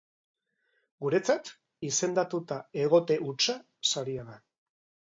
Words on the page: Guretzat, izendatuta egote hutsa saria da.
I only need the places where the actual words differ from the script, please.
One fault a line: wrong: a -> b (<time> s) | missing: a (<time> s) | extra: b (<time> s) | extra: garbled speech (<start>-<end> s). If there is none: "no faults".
no faults